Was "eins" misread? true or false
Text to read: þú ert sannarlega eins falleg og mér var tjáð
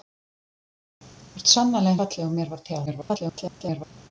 true